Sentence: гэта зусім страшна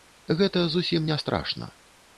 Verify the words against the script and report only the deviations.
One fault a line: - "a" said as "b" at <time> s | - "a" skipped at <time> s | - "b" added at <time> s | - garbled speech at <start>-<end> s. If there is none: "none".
- "не" added at 1.1 s